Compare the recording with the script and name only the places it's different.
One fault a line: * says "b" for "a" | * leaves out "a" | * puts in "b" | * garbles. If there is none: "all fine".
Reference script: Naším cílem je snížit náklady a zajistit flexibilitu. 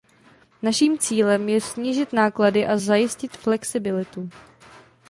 all fine